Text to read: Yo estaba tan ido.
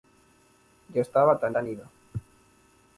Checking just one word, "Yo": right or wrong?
right